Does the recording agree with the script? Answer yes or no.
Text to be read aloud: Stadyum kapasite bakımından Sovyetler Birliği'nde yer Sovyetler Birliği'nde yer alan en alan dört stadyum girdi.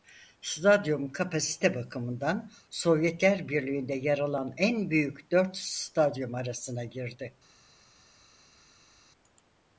no